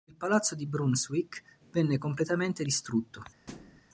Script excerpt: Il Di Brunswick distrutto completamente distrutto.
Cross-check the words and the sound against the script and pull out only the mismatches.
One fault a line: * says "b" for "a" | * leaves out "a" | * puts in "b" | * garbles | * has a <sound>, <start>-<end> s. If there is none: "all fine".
* puts in "Palazzo"
* says "venne" for "distrutto"
* has a thud, 3.5-3.8 s